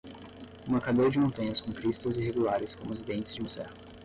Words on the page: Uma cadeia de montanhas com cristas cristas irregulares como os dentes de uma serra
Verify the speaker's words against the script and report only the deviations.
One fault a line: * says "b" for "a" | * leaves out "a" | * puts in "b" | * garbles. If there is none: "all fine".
* leaves out "cristas"